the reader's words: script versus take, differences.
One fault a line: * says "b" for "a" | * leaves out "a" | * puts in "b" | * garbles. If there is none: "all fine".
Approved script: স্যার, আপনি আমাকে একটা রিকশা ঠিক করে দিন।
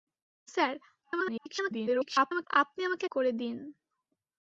* garbles
* leaves out "একটা রিকশা ঠিক"